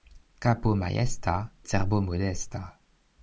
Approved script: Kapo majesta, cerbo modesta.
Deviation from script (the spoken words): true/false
false